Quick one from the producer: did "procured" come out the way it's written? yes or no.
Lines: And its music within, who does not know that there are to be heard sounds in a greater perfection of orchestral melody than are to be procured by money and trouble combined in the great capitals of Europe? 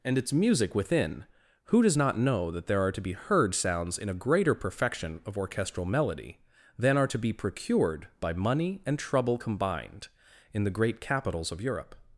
yes